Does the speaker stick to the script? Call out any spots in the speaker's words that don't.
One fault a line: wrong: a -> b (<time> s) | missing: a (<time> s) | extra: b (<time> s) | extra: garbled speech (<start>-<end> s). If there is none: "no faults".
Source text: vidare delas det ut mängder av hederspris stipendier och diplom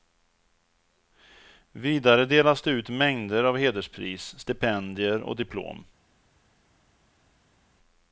no faults